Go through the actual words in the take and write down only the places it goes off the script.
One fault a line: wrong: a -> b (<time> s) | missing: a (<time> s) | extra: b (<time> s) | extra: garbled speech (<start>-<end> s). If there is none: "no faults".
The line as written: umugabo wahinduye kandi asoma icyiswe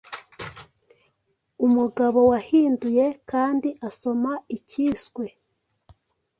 no faults